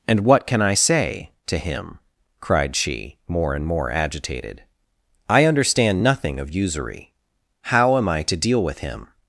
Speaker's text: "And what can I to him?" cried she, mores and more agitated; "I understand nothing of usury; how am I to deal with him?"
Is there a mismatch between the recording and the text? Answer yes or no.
yes